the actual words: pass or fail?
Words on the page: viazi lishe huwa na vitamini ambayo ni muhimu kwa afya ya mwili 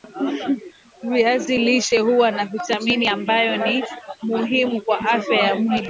pass